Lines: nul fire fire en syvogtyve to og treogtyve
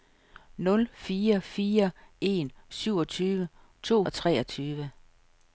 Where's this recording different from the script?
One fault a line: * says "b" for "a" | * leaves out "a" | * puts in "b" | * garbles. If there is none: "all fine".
all fine